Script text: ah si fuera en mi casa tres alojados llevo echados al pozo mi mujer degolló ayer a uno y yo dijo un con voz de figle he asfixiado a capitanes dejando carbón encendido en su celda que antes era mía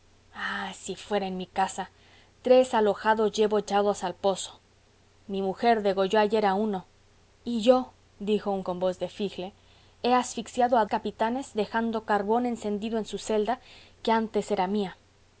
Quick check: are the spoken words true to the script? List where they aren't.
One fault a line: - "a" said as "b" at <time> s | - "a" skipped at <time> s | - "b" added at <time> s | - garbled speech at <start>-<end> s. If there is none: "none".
none